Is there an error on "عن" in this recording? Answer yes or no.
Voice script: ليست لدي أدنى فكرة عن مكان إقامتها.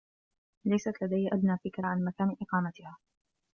no